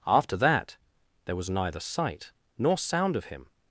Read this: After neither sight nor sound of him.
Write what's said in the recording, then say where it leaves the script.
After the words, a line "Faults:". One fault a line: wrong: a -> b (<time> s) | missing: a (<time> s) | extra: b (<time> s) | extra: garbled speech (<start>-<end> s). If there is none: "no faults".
After that there was neither sight nor sound of him.
Faults:
extra: that there was (0.4 s)